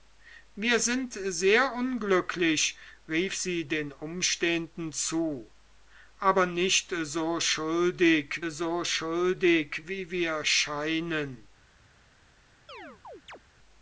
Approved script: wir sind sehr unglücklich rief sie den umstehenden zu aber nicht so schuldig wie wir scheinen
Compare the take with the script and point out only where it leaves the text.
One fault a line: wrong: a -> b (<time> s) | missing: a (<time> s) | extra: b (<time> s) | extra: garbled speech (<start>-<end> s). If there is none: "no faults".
extra: so schuldig (8.5 s)